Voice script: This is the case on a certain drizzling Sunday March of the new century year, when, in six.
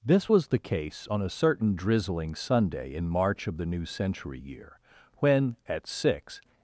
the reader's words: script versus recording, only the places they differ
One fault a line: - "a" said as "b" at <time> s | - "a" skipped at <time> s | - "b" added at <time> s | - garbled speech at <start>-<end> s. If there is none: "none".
- "is" said as "was" at 0.3 s
- "in" added at 2.9 s
- "in" said as "at" at 5.7 s